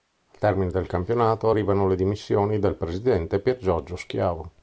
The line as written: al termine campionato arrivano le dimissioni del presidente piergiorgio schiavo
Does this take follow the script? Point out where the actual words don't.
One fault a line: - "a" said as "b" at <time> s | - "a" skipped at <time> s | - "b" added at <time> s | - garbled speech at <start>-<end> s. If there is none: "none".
- "del" added at 0.7 s